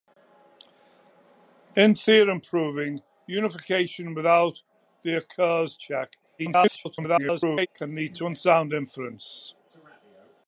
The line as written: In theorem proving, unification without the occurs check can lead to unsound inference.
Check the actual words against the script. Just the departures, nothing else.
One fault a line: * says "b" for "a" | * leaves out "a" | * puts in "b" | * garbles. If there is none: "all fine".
* garbles